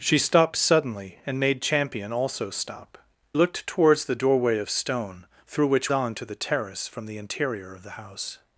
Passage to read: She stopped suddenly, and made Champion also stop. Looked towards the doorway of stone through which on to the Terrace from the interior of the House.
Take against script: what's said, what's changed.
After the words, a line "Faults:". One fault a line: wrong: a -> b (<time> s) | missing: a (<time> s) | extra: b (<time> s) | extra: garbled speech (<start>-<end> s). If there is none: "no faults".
She stopped suddenly, and made Champion also stop. Looked towards the doorway of stone through which on to the Terrace from the interior of the House.
Faults:
no faults